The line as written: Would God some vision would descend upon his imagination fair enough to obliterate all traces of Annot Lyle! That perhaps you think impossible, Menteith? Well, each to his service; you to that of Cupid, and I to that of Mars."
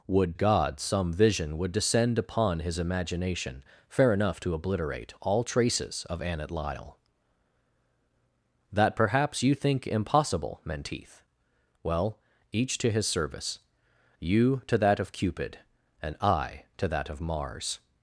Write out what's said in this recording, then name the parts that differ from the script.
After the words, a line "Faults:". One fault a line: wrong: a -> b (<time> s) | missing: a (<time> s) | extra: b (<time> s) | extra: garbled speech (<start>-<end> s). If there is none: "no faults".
Would God some vision would descend upon his imagination fair enough to obliterate all traces of Annot Lyle! That perhaps you think impossible, Menteith? Well, each to his service; you to that of Cupid, and I to that of Mars."
Faults:
no faults